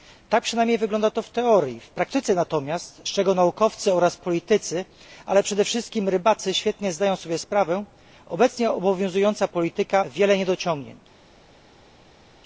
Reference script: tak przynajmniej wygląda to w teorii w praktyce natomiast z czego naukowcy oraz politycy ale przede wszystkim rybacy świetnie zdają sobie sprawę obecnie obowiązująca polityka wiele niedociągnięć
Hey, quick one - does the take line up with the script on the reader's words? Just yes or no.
yes